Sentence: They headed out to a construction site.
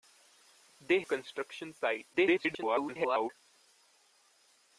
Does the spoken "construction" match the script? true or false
true